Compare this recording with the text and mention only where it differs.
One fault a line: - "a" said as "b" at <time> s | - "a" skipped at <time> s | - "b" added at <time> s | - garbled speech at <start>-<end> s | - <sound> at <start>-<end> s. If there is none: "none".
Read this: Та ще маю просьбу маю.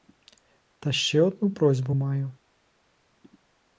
- "маю" said as "одну" at 1.2 s